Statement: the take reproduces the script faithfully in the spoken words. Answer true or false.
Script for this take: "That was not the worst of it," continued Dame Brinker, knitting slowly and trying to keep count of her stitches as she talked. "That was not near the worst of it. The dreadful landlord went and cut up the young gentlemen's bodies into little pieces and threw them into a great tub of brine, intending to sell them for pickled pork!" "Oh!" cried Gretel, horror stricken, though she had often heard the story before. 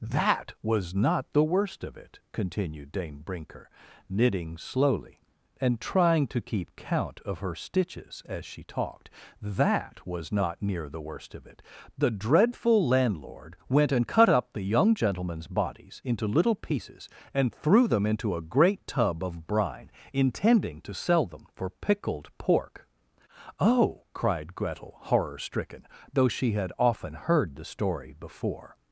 true